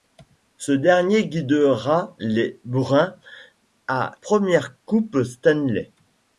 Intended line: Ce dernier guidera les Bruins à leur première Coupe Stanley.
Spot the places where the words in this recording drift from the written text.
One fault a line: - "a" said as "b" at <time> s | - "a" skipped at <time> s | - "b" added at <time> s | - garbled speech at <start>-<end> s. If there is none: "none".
- "leur" skipped at 4.1 s